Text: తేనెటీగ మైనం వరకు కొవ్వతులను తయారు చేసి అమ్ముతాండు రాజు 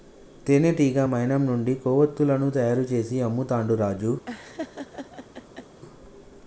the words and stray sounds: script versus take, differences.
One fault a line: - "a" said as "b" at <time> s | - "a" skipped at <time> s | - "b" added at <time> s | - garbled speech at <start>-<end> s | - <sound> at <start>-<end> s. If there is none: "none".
- "వరకు" said as "నుండి" at 1.5 s
- laugh at 4.3-5.8 s